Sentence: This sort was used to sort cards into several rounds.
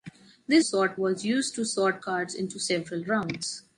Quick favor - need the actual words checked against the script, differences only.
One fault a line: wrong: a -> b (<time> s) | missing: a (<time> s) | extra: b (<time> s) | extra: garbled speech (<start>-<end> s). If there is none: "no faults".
no faults